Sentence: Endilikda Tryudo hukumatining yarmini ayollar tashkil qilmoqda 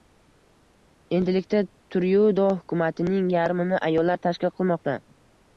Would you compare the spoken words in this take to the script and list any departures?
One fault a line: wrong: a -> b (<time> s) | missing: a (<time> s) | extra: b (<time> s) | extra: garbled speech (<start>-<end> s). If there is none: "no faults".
no faults